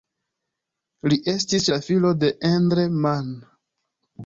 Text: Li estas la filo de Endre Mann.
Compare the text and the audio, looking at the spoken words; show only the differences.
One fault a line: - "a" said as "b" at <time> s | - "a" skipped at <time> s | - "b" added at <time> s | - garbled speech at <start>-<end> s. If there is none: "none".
- "estas" said as "estis" at 1.3 s